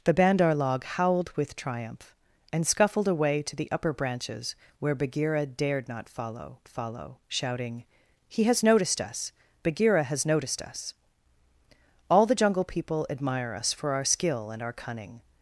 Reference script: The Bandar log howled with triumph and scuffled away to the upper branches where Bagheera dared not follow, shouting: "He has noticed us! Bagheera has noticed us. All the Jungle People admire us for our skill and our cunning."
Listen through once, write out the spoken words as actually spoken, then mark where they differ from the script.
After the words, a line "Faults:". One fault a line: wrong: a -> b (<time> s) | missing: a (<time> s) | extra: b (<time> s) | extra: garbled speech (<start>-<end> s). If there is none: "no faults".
The Bandar log howled with triumph and scuffled away to the upper branches where Bagheera dared not follow follow, shouting: "He has noticed us! Bagheera has noticed us. All the Jungle People admire us for our skill and our cunning."
Faults:
extra: follow (6.7 s)